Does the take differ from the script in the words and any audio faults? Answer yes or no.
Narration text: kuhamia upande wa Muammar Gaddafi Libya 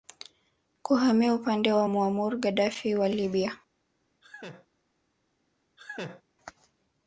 yes